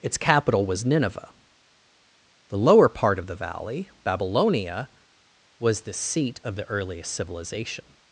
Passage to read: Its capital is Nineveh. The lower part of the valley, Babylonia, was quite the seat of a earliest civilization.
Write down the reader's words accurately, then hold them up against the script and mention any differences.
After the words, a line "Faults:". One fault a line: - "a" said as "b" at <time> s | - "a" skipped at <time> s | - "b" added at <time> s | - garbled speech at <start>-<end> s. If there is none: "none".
Its capital was Nineveh. The lower part of the valley, Babylonia, was the seat of the earliest civilization.
Faults:
- "is" said as "was" at 0.7 s
- "quite" skipped at 5.8 s
- "a" said as "the" at 6.6 s